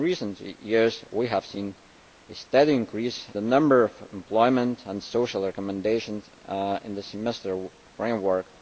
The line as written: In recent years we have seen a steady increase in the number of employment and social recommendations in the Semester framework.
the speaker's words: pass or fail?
fail